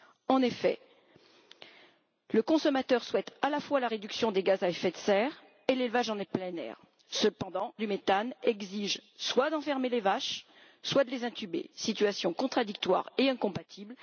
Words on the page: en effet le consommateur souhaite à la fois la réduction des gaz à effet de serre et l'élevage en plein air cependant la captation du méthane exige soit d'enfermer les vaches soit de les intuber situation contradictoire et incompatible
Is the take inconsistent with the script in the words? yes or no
yes